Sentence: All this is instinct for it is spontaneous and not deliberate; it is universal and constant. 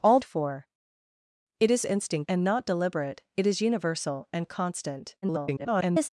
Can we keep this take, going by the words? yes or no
no